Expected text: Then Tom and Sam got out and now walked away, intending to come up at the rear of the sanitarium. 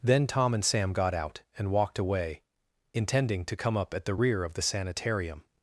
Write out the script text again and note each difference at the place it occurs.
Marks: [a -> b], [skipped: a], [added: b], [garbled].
Then Tom and Sam got out and [skipped: now] walked away, intending to come up at the rear of the sanitarium.